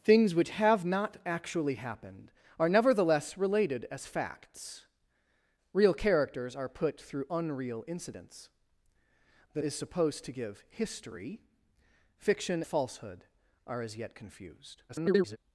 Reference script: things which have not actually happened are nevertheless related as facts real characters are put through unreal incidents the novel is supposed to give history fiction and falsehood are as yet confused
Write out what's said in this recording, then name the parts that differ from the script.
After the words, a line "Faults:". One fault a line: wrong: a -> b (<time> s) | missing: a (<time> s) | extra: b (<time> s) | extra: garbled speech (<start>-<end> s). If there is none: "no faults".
things which have not actually happened are nevertheless related as facts real characters are put through unreal incidents the is supposed to give history fiction falsehood are as yet confused [garbled]
Faults:
missing: novel (9.6 s)
missing: and (12.6 s)
extra: garbled speech (14.9-15.4 s)